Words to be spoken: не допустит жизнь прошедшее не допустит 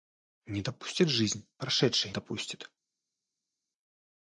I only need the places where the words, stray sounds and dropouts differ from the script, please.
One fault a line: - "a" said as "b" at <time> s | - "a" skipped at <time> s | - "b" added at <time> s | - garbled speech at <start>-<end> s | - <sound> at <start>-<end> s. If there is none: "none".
- "не" skipped at 2.1 s